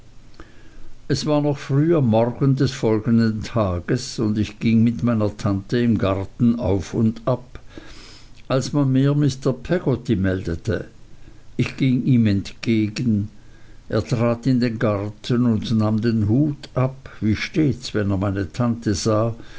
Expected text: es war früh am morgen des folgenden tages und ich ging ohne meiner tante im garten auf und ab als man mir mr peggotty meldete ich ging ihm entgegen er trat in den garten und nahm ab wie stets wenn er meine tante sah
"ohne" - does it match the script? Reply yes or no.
no